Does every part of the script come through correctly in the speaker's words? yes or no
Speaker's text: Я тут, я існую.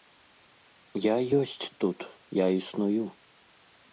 no